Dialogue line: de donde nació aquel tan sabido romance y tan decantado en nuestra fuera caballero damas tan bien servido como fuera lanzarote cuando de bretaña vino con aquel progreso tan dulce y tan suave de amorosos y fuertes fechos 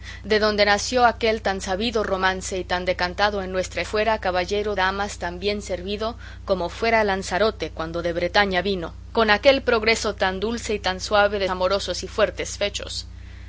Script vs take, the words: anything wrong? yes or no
no